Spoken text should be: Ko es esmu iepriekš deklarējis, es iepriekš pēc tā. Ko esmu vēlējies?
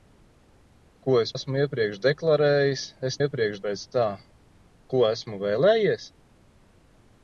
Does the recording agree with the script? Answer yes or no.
yes